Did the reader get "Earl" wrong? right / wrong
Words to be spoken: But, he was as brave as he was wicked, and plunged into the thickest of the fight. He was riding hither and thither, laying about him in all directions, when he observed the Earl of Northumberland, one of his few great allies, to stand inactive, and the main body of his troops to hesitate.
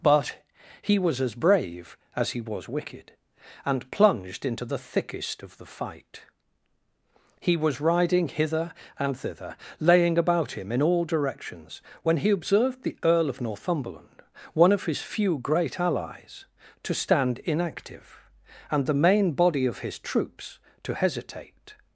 right